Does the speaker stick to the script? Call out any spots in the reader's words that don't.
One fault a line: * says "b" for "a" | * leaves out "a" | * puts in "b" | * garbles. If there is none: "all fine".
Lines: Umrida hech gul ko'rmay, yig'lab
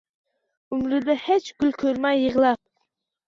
all fine